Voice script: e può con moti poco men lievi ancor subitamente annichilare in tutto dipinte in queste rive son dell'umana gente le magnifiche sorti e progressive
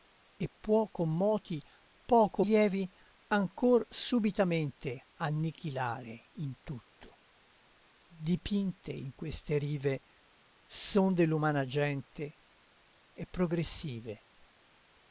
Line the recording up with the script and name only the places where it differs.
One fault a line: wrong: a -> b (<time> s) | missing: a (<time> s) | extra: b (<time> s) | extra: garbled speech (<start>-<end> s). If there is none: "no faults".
missing: men (2.4 s)
missing: le magnifiche sorti (12.4 s)